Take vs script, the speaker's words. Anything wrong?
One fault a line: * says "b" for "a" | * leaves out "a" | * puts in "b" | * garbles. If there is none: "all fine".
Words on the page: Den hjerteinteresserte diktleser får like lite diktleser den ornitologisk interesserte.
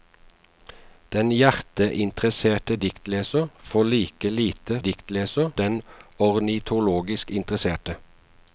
all fine